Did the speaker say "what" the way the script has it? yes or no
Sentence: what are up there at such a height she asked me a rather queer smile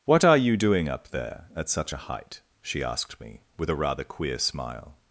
yes